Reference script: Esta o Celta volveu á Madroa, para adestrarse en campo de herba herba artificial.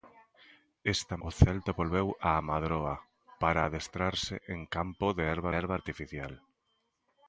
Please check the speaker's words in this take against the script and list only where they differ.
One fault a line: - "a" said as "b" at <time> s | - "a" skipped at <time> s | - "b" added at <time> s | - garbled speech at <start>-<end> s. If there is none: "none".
none